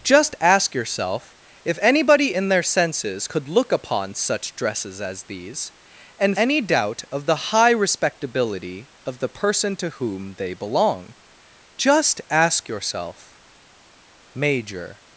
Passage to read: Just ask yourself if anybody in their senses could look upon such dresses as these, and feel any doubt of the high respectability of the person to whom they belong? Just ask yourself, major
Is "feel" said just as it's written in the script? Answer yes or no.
no